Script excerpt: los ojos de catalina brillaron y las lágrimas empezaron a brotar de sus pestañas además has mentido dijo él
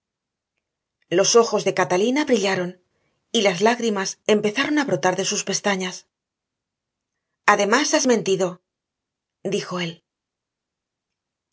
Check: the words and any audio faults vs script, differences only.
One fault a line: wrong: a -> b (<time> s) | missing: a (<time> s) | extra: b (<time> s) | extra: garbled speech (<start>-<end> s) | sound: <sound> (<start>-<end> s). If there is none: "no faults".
no faults